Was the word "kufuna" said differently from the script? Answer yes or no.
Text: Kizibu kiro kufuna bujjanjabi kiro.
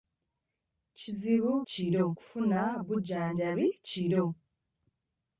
no